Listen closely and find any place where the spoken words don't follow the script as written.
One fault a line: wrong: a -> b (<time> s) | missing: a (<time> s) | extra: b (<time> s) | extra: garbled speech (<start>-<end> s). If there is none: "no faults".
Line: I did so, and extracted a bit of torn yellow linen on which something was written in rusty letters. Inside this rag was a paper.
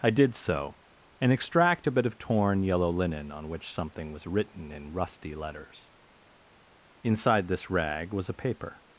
wrong: extracted -> extract (1.3 s)